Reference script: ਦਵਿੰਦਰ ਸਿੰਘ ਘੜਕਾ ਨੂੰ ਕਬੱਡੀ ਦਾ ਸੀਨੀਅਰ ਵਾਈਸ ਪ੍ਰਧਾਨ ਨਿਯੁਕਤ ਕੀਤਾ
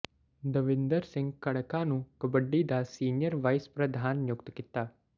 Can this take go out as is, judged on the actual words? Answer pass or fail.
pass